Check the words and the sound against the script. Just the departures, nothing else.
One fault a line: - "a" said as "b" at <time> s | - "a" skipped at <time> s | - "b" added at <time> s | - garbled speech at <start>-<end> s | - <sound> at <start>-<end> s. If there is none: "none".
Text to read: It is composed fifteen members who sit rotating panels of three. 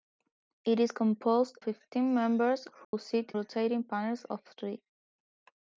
- dropout at 2.8-2.9 s